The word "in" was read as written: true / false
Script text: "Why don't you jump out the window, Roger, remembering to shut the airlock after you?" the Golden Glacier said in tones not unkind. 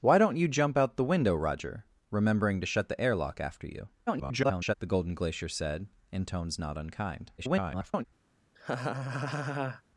true